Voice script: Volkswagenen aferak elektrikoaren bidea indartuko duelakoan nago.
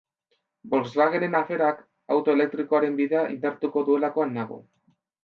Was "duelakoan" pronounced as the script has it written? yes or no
yes